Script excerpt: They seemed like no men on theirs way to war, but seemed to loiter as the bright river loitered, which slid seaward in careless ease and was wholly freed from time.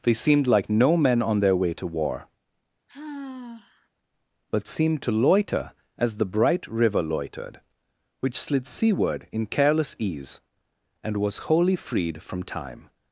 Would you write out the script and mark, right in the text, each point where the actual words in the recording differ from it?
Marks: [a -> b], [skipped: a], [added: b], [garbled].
They seemed like no men on [theirs -> their] way to war, but seemed to loiter as the bright river loitered, which slid seaward in careless ease and was wholly freed from time.